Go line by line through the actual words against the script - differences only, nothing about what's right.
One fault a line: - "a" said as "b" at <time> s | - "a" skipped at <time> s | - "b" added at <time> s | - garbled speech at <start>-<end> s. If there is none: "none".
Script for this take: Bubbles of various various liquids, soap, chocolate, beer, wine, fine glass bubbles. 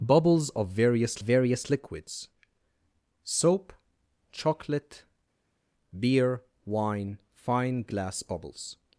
none